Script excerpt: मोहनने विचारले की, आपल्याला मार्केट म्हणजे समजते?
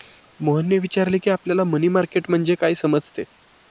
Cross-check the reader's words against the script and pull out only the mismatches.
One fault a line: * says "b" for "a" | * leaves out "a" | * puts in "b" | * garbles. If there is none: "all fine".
* puts in "मनी"
* puts in "काय"